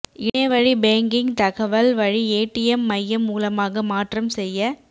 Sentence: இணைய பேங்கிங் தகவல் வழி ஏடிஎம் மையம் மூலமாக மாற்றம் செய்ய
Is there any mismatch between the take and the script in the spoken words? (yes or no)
yes